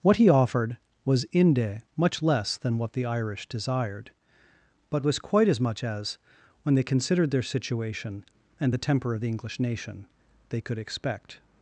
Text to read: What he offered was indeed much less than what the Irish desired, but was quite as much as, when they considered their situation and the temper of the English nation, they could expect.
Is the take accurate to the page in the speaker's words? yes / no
no